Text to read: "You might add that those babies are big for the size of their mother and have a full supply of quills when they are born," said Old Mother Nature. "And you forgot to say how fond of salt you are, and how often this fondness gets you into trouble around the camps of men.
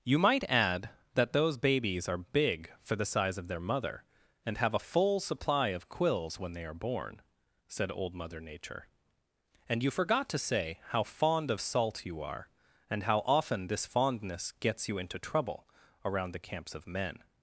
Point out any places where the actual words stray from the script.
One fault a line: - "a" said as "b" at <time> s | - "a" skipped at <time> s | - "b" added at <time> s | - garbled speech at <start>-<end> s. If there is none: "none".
none